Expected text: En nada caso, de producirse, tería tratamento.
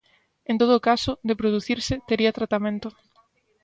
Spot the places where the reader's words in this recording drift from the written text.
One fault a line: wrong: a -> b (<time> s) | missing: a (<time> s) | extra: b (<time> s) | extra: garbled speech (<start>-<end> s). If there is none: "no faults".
wrong: nada -> todo (0.6 s)